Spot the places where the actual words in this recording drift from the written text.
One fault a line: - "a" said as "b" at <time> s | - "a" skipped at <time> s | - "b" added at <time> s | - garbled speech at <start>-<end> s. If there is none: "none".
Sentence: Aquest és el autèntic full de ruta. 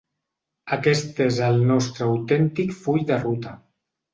- "nostre" added at 1.7 s